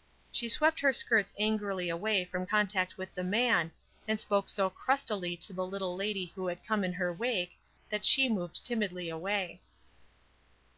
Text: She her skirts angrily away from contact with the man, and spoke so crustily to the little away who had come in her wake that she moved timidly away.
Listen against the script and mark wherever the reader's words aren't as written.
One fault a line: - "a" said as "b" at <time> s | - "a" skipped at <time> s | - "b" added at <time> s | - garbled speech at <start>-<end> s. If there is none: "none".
- "swept" added at 0.5 s
- "away" said as "lady" at 6.0 s